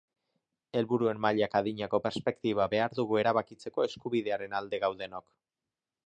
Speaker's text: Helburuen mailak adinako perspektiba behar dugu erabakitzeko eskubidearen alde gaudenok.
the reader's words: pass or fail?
pass